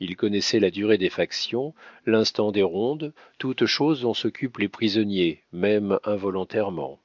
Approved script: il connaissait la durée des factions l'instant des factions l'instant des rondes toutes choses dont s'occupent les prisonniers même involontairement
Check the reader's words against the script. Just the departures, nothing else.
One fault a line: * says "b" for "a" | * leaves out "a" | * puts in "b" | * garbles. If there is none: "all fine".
* leaves out "factions l'instant des"